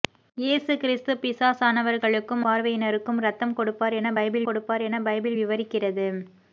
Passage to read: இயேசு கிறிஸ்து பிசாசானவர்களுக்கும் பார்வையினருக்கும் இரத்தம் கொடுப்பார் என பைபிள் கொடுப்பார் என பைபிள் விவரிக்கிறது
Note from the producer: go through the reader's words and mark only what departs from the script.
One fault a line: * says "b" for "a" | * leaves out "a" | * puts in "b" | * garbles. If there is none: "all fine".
all fine